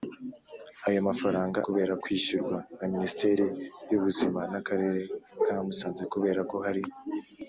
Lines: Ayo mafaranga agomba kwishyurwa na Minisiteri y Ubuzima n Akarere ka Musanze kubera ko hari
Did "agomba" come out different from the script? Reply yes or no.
yes